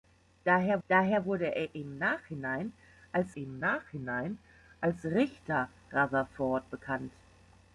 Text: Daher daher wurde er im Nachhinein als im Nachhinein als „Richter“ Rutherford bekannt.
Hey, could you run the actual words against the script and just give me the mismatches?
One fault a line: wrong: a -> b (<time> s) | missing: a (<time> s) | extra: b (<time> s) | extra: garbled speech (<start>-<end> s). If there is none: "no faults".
no faults